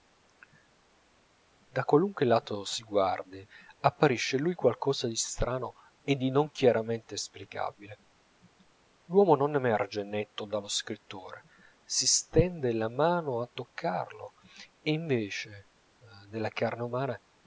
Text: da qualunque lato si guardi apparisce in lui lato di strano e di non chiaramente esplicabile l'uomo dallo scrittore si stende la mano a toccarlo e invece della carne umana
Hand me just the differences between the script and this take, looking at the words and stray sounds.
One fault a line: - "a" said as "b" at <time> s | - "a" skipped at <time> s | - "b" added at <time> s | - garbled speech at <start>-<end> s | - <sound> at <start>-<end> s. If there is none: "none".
- "lato" said as "qualcosa" at 4.5 s
- "non emerge netto" added at 9.3 s